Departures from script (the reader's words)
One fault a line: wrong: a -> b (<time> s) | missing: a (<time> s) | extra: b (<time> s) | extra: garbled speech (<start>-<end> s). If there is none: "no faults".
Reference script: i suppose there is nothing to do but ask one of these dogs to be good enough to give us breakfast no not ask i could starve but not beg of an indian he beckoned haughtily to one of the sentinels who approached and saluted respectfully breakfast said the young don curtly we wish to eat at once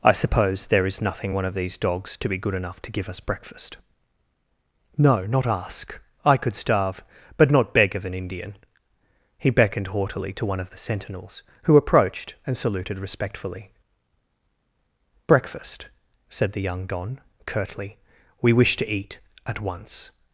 missing: to do but ask (1.4 s)